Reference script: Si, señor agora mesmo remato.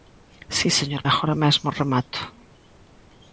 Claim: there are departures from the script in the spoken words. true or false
false